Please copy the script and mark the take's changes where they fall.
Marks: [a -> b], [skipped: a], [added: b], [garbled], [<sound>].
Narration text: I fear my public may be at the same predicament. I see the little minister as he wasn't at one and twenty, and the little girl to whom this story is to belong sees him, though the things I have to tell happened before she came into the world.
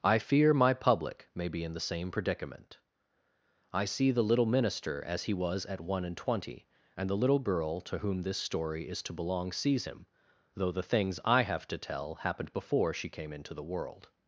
I fear my public may be [at -> in] the same predicament. I see the little minister as he [wasn't -> was] at one and twenty, and the little girl to whom this story is to belong sees him, though the things I have to tell happened before she came into the world.